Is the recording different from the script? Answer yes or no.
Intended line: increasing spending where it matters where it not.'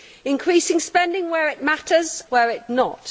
no